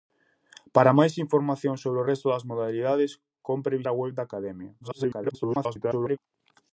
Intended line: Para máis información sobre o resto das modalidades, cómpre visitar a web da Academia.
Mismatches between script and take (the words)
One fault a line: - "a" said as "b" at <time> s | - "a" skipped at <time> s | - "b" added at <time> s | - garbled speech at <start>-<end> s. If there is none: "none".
- "visitar" skipped at 3.8 s
- garbled speech at 4.8-6.2 s